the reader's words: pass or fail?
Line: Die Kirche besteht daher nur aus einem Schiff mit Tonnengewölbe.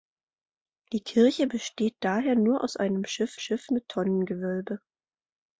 fail